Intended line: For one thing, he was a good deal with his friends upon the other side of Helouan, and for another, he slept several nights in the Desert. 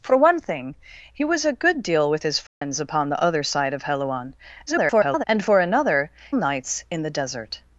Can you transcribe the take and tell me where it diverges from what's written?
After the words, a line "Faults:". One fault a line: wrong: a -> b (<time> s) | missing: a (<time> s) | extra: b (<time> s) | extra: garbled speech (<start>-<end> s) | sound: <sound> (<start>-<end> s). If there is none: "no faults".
For one thing, he was a good deal with his friends upon the other side of Helouan, [garbled] and for another, nights in the Desert.
Faults:
sound: dropout (2.5-2.6 s)
extra: garbled speech (4.7-5.2 s)
missing: he slept several (6.1 s)